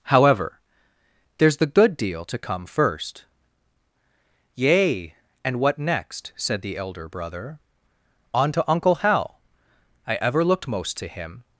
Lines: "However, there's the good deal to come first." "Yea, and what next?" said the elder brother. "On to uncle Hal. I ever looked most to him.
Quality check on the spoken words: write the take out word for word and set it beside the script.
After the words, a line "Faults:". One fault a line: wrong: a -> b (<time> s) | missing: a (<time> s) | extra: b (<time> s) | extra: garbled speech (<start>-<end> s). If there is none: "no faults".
"However, there's the good deal to come first." "Yea, and what next?" said the elder brother. "On to uncle Hal. I ever looked most to him.
Faults:
no faults